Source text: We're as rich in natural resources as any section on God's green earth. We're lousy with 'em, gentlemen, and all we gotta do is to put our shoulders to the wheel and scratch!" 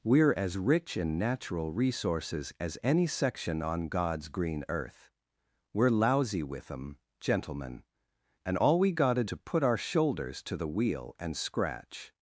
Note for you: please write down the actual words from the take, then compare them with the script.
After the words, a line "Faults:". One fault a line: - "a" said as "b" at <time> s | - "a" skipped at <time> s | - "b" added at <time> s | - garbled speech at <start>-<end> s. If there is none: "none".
We're as rich in natural resources as any section on God's green earth. We're lousy with 'em, gentlemen, and all we gotta to put our shoulders to the wheel and scratch!"
Faults:
- "do is" skipped at 9.2 s